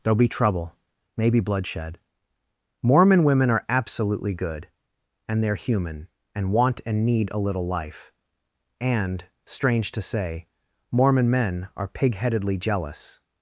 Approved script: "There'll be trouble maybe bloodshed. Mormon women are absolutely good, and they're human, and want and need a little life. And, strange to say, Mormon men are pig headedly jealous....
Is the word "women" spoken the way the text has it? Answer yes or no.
yes